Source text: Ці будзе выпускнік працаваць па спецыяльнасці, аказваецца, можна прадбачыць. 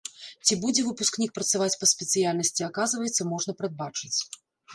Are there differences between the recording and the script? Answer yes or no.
no